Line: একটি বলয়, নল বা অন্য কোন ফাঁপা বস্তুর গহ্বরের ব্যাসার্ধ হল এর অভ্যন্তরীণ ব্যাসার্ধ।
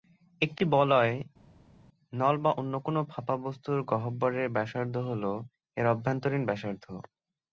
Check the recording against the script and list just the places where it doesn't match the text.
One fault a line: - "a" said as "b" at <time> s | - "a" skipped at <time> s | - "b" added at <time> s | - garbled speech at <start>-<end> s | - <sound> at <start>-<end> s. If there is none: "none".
none